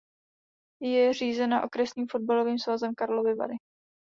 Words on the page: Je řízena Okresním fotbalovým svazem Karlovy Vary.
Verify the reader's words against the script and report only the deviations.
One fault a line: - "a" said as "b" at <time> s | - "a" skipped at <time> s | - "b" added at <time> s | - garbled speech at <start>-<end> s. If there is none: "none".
none